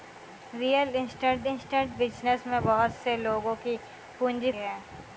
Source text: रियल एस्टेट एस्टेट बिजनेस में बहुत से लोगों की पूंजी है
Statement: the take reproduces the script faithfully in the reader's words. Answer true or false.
true